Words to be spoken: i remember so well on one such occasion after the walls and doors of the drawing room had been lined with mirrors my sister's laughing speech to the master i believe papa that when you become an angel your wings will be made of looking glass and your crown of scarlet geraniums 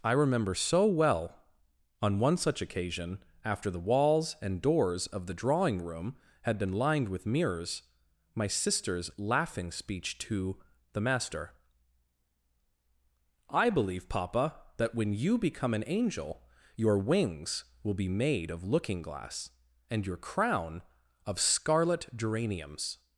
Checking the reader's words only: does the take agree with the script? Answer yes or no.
yes